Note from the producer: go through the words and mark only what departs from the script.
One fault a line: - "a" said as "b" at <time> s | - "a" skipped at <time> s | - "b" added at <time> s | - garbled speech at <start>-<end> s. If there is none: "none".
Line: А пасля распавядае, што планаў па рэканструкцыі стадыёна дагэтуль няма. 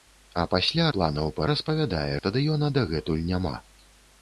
- "распавядае што" skipped at 0.8 s
- "рэканструкцыі" said as "распавядае" at 1.5 s